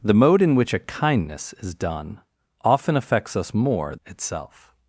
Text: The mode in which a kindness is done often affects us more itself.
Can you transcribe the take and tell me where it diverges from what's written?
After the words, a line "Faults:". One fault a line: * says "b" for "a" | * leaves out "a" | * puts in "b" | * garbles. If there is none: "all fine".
The mode in which a kindness is done often affects us more itself.
Faults:
all fine